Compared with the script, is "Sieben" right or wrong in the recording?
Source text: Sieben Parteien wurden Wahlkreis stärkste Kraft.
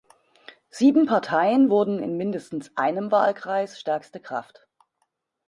right